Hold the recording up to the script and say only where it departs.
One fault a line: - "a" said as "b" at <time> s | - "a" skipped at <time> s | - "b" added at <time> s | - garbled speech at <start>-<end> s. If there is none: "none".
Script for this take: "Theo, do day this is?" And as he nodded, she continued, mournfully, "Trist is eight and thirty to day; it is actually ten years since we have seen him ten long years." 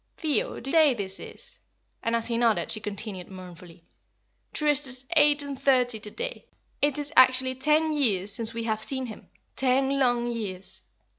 none